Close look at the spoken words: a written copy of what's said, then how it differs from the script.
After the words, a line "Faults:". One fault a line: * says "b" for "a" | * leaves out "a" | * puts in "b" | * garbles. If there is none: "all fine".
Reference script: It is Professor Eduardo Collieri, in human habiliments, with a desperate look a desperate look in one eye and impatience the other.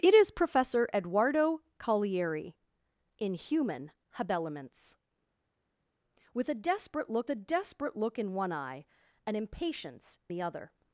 It is Professor Eduardo Collieri, in human habiliments, with a desperate look a desperate look in one eye and impatience the other.
Faults:
all fine